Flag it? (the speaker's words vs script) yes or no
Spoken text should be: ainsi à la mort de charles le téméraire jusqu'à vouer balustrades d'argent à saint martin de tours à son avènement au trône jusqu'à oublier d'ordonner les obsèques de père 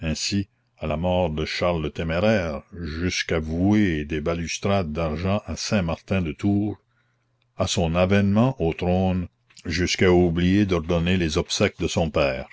yes